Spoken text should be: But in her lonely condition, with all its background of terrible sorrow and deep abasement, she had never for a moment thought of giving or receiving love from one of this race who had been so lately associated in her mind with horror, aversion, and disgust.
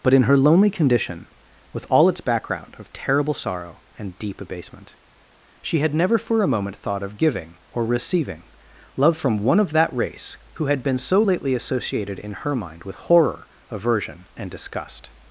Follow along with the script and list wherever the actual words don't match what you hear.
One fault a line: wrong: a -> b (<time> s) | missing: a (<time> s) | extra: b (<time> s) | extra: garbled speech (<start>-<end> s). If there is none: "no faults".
wrong: this -> that (9.7 s)